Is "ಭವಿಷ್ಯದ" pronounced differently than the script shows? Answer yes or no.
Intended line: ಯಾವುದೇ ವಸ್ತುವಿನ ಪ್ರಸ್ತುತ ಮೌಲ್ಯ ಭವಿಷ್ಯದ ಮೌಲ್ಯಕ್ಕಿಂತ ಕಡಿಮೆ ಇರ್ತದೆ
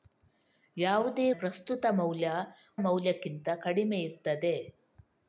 yes